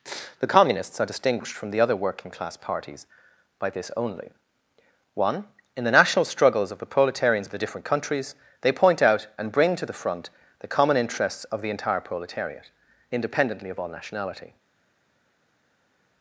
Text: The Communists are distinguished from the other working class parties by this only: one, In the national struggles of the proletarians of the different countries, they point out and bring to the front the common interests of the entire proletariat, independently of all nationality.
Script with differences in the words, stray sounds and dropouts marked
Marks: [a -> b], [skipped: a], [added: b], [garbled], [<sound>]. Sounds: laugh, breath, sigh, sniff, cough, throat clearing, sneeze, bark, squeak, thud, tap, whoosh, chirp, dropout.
The Communists are distinguished from the other working class parties by this only: one, In the national struggles of the proletarians of the different countries, they point out and bring to the front the common interests of the entire proletariat, independently of all nationality.